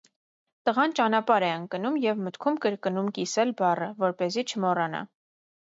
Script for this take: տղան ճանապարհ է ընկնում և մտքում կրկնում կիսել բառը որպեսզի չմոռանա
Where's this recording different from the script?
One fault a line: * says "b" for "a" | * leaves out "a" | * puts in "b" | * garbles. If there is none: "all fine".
all fine